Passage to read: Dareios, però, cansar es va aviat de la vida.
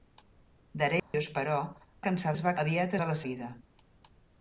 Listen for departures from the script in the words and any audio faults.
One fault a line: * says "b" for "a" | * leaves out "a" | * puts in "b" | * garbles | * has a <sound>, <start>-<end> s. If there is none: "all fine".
* has a dropout, 1.0-1.1 s